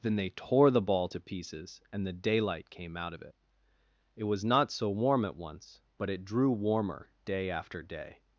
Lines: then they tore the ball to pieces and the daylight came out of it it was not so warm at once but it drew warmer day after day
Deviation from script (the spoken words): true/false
false